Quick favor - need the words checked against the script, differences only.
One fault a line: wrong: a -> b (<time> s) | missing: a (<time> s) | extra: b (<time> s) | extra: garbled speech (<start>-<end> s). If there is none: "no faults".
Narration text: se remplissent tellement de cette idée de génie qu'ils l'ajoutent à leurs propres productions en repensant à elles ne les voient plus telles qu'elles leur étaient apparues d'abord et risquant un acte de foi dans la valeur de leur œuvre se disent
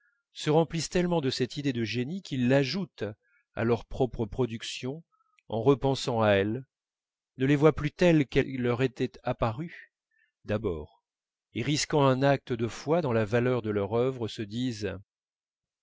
no faults